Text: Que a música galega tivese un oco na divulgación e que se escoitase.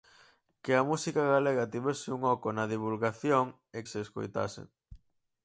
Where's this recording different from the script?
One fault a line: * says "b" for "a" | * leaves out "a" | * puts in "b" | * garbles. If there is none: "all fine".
* leaves out "que"